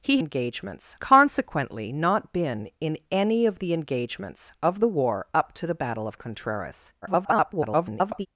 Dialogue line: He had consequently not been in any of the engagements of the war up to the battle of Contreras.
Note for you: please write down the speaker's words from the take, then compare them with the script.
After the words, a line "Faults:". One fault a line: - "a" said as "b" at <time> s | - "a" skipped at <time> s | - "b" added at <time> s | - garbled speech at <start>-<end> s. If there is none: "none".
He engagements consequently not been in any of the engagements of the war up to the battle of Contreras. [garbled]
Faults:
- "had" said as "engagements" at 0.2 s
- garbled speech at 7.0-8.3 s